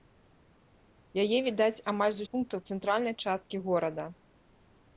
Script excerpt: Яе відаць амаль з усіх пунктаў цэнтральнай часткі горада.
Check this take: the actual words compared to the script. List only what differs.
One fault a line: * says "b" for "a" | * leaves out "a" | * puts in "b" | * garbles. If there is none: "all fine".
* leaves out "усіх"